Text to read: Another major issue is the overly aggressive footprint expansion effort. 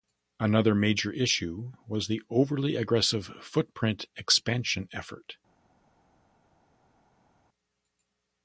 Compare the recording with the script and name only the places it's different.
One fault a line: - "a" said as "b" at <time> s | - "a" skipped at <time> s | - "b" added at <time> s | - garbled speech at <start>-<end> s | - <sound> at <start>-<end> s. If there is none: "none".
- "is" said as "was" at 1.9 s